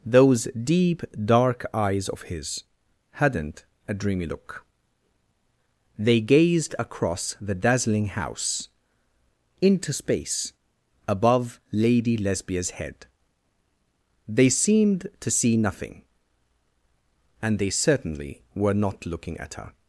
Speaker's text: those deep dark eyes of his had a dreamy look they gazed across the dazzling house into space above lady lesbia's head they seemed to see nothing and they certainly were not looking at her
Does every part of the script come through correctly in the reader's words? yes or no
no